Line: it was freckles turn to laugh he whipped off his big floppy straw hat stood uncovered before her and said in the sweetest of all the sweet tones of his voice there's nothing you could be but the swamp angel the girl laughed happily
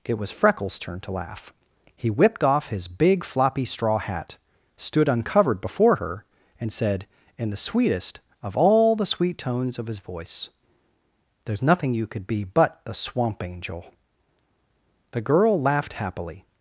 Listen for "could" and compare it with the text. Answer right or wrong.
right